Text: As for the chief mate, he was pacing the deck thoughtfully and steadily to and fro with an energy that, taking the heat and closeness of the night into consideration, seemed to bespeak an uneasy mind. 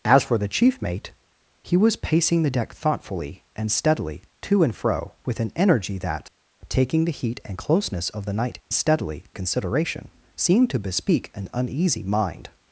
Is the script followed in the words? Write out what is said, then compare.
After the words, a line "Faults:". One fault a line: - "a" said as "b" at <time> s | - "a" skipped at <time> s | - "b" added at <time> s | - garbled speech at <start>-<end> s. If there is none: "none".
As for the chief mate, he was pacing the deck thoughtfully and steadily to and fro with an energy that, taking the heat and closeness of the night steadily consideration, seemed to bespeak an uneasy mind.
Faults:
- "into" said as "steadily" at 8.7 s